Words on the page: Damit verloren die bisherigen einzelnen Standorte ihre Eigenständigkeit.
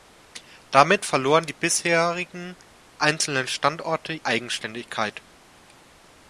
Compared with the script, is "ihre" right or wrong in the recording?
wrong